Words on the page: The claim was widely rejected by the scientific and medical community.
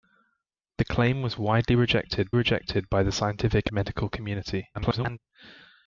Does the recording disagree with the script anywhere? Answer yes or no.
yes